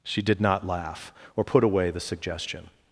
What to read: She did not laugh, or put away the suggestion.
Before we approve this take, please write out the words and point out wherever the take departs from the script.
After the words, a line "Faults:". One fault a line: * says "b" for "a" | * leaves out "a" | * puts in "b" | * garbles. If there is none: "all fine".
She did not laugh, or put away the suggestion.
Faults:
all fine